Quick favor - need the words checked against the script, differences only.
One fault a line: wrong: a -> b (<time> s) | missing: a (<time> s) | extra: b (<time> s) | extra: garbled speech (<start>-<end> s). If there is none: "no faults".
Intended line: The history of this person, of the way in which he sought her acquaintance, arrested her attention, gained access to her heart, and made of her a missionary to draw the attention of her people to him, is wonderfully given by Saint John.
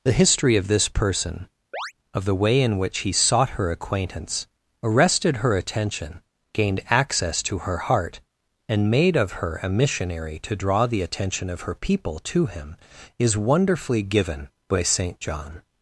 no faults